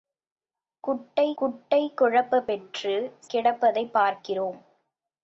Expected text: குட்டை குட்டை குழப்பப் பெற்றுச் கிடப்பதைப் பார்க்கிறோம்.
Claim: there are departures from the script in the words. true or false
false